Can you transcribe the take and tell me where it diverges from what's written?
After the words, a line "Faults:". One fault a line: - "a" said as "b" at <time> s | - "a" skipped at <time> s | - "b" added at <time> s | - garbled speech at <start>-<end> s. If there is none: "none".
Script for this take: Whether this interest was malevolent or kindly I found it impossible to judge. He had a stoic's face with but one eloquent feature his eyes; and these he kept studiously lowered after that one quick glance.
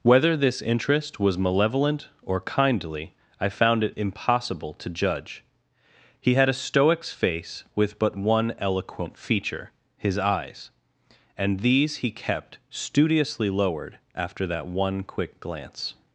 Whether this interest was malevolent or kindly I found it impossible to judge. He had a stoic's face with but one eloquent feature his eyes; and these he kept studiously lowered after that one quick glance.
Faults:
none